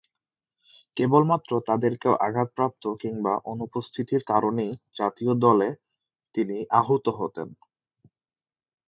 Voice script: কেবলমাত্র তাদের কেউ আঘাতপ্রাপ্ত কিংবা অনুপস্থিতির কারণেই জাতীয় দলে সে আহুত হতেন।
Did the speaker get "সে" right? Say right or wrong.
wrong